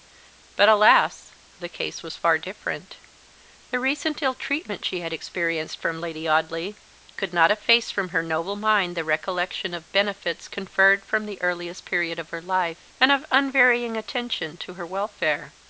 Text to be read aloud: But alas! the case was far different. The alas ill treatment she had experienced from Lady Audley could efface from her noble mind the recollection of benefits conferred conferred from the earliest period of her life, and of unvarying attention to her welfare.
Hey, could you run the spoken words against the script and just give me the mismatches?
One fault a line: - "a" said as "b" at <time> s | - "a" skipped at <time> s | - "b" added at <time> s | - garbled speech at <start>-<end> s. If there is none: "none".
- "alas" said as "recent" at 3.8 s
- "not" added at 7.3 s
- "conferred" skipped at 11.0 s